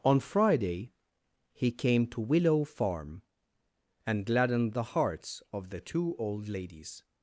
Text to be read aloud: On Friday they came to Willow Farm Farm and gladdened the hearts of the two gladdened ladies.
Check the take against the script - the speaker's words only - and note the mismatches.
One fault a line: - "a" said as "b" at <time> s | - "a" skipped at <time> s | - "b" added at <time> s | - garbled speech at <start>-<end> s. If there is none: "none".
- "they" said as "he" at 1.5 s
- "Farm" skipped at 3.2 s
- "gladdened" said as "old" at 6.2 s